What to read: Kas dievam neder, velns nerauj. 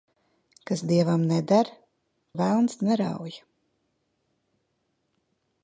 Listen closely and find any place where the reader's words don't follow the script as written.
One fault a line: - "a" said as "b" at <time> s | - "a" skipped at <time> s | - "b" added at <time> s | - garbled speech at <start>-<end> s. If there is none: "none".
none